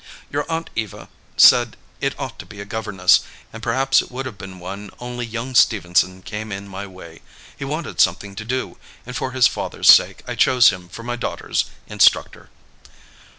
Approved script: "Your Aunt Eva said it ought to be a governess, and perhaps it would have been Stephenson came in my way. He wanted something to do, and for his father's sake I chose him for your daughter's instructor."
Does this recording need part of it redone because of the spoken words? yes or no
yes